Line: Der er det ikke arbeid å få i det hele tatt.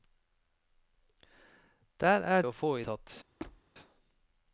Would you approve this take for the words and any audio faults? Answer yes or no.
no